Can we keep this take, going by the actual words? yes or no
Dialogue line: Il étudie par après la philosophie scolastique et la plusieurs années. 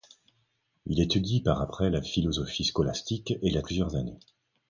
yes